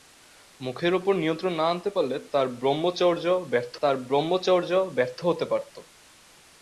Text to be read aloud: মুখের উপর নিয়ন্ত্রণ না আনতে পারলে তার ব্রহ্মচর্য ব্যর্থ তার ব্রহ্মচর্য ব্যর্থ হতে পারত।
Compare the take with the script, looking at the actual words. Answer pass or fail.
pass